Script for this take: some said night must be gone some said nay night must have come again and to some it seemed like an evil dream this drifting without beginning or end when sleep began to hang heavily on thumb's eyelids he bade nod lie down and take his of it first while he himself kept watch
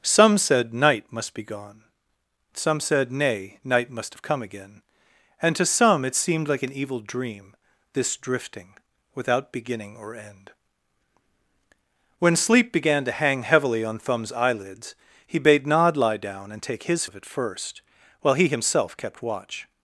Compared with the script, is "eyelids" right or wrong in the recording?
right